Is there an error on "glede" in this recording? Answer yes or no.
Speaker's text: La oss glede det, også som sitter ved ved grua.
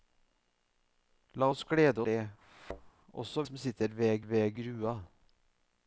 no